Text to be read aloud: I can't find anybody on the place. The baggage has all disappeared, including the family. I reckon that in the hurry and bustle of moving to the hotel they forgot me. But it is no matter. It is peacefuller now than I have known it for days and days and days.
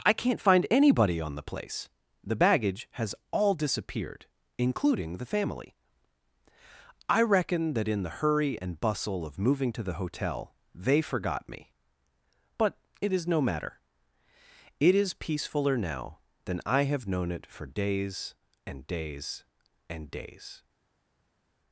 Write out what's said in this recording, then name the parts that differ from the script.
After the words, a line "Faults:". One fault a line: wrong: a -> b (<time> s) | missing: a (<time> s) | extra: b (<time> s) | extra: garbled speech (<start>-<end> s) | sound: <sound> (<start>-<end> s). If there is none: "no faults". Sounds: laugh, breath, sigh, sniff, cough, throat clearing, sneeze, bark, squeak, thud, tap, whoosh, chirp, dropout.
I can't find anybody on the place. The baggage has all disappeared, including the family. I reckon that in the hurry and bustle of moving to the hotel they forgot me. But it is no matter. It is peacefuller now than I have known it for days and days and days.
Faults:
no faults